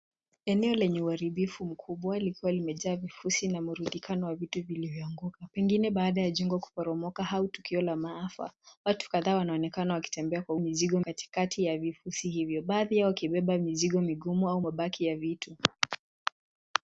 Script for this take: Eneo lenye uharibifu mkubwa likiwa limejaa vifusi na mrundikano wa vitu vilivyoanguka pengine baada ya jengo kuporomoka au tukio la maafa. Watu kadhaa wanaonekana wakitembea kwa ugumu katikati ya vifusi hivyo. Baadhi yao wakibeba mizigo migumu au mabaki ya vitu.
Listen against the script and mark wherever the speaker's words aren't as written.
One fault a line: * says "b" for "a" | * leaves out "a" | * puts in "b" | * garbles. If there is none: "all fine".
* says "mizigo" for "ugumu"